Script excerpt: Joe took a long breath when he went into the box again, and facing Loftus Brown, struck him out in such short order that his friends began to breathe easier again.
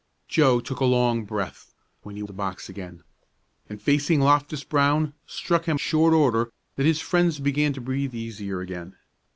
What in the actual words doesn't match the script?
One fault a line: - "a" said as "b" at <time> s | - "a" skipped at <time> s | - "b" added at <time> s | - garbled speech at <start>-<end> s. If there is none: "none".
- "went into" skipped at 2.2 s
- "out in such" skipped at 5.8 s